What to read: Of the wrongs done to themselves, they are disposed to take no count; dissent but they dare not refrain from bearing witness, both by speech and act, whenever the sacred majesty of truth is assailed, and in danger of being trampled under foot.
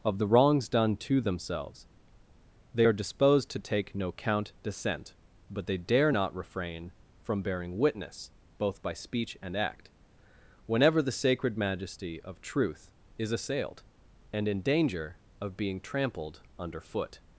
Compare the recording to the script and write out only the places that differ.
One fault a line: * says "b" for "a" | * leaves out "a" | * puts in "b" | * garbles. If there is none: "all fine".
all fine